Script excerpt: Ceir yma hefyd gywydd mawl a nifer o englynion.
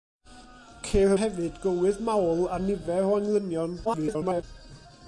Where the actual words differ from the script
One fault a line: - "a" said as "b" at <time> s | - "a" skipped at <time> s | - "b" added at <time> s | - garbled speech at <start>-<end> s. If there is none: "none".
- "yma" skipped at 1.1 s
- garbled speech at 3.8-4.4 s